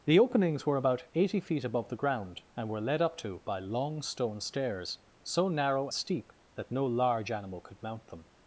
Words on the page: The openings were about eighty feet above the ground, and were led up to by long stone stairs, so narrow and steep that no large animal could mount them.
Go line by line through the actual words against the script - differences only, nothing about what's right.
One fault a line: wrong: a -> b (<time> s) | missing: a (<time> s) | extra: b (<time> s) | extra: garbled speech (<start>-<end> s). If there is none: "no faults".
missing: and (5.9 s)